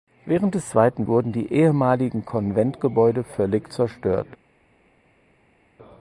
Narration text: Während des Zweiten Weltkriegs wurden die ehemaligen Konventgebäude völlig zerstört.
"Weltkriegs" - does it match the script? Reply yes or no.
no